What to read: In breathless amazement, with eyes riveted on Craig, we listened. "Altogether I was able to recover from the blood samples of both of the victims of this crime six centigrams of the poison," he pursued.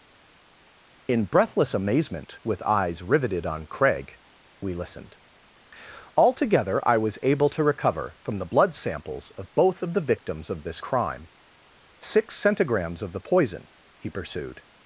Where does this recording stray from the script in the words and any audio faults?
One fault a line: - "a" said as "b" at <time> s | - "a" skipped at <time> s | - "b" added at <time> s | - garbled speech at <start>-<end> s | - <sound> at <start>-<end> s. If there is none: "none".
none